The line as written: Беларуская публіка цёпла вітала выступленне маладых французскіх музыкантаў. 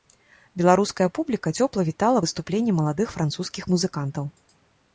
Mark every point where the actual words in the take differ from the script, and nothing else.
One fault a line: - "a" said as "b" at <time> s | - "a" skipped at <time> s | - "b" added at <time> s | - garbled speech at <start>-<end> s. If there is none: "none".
none